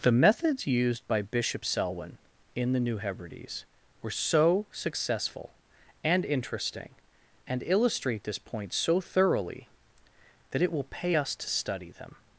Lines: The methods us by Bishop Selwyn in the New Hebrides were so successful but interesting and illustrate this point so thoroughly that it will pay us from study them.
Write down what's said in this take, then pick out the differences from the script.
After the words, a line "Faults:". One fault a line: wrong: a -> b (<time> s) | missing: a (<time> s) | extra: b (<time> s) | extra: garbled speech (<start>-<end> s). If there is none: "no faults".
The methods used by Bishop Selwyn in the New Hebrides were so successful and interesting and illustrate this point so thoroughly that it will pay us to study them.
Faults:
wrong: us -> used (0.7 s)
wrong: but -> and (6.0 s)
wrong: from -> to (11.4 s)